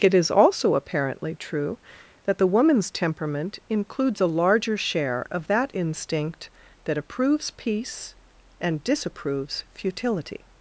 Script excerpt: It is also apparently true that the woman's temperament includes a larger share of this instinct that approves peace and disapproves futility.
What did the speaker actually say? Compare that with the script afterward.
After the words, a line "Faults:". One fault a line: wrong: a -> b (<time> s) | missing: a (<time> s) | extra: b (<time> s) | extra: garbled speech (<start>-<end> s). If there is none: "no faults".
It is also apparently true that the woman's temperament includes a larger share of that instinct that approves peace and disapproves futility.
Faults:
wrong: this -> that (5.5 s)